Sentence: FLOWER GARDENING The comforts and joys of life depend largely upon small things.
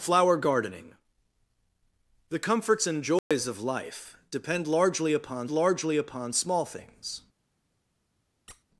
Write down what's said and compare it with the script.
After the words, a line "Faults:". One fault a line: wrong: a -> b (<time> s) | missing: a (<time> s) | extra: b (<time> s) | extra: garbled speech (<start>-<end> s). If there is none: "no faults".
FLOWER GARDENING The comforts and joys of life depend largely upon largely upon small things.
Faults:
extra: largely upon (5.5 s)